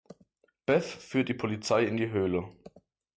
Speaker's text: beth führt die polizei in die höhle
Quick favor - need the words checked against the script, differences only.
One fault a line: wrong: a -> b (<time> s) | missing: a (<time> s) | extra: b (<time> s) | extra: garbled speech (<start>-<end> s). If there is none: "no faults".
no faults